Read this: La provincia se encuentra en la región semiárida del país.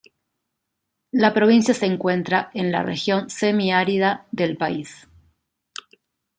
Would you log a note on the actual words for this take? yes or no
no